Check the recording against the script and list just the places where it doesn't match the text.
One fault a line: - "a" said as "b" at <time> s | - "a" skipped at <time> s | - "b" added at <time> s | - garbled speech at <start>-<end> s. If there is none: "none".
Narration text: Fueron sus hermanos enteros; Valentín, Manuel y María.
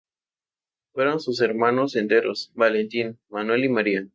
none